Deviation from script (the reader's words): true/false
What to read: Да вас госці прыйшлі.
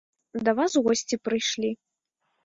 false